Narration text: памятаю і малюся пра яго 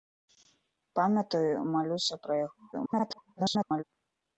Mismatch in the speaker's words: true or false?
true